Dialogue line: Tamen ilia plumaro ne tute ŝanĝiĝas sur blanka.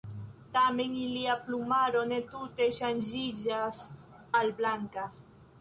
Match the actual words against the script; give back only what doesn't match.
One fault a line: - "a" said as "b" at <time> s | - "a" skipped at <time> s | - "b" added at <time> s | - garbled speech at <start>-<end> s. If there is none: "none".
- "sur" said as "al" at 4.4 s